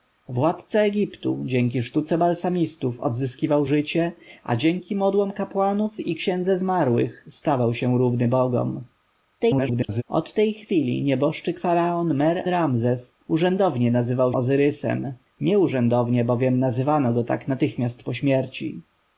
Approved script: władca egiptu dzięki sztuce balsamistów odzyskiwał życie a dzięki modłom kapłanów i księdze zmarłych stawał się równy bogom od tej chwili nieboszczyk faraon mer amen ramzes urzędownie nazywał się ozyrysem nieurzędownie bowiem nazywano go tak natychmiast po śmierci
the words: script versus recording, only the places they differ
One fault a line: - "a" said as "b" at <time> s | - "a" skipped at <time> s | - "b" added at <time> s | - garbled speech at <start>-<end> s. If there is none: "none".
- garbled speech at 9.4-10.0 s
- "amen" skipped at 12.4 s
- "się" skipped at 14.3 s